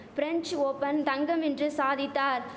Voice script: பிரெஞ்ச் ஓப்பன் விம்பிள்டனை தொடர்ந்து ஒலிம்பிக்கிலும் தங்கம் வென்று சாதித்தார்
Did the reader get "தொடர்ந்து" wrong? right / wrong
wrong